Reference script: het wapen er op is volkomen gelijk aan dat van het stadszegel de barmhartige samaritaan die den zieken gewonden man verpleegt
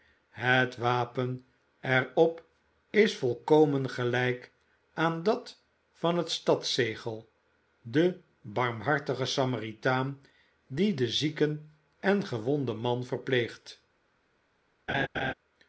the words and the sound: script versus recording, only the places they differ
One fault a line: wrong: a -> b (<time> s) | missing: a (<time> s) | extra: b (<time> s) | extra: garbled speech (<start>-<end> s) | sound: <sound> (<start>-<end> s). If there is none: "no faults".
extra: en (12.0 s)
sound: laugh (14.9-15.3 s)